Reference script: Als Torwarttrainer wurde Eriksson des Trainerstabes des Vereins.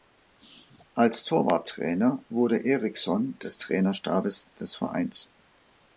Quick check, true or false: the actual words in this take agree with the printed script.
true